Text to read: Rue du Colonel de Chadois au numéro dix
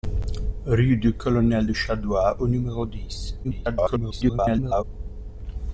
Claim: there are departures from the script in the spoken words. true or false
true